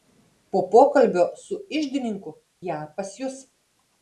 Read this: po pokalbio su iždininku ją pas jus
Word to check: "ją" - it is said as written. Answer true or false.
true